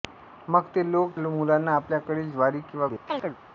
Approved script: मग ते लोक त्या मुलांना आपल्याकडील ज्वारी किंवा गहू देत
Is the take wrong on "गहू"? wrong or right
wrong